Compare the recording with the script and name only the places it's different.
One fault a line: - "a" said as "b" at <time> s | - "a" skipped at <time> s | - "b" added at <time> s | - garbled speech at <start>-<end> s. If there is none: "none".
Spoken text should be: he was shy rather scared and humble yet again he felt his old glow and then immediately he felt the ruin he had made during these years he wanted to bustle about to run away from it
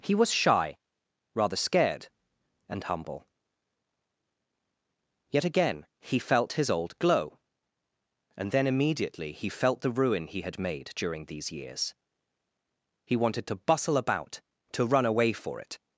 - "from" said as "for" at 15.3 s